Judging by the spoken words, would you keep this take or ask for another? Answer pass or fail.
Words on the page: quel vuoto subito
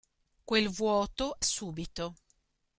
pass